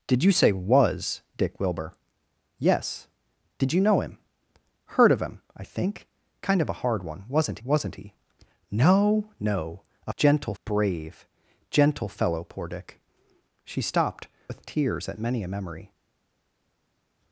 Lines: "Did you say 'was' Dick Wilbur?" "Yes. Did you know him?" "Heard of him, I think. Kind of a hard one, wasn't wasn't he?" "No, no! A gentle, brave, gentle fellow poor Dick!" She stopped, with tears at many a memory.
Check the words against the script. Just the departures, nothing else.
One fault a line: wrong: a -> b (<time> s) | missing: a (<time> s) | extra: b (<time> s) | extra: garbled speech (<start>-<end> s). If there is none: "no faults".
no faults